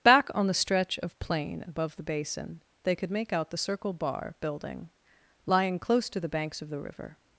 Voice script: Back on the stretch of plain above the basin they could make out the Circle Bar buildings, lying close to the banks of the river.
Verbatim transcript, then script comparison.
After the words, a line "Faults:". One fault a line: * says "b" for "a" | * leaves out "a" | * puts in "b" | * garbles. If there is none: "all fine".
Back on the stretch of plain above the basin they could make out the Circle Bar building, lying close to the banks of the river.
Faults:
* says "building" for "buildings"